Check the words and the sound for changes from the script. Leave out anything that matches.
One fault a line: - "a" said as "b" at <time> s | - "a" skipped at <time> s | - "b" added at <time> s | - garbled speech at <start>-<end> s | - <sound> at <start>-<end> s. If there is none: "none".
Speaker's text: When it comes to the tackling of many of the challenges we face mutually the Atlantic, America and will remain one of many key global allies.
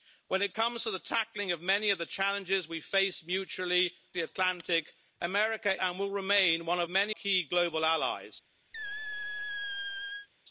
- squeak at 8.7-10.3 s